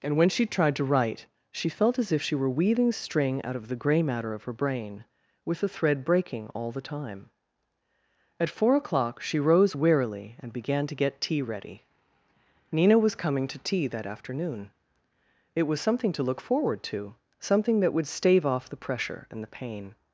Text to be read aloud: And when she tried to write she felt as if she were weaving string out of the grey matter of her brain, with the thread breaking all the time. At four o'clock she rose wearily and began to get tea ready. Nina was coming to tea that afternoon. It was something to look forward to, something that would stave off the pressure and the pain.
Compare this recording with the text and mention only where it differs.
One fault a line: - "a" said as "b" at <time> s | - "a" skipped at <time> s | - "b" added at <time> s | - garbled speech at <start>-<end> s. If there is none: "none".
none